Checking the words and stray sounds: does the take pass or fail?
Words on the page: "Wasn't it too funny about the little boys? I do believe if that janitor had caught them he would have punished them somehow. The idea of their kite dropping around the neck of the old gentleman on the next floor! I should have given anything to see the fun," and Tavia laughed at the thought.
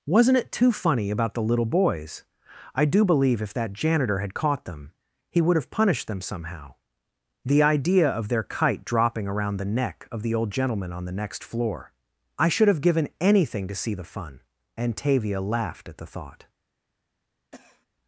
fail